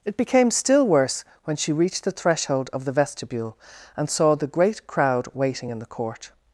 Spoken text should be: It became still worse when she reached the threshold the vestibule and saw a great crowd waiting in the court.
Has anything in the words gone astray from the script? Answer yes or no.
yes